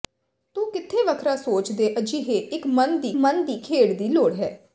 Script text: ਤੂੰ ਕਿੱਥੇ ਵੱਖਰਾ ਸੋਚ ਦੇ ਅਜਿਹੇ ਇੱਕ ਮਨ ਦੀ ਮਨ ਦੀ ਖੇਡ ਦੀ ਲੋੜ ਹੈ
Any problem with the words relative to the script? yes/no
no